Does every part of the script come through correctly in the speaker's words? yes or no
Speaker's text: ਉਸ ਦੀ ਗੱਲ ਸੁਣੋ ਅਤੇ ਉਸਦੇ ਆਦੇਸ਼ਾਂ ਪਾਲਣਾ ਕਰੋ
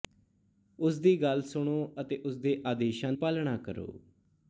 yes